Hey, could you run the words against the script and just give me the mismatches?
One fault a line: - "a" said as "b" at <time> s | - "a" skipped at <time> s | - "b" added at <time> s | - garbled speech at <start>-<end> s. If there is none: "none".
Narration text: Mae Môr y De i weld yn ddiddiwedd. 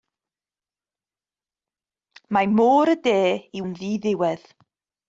- "weld" skipped at 3.6 s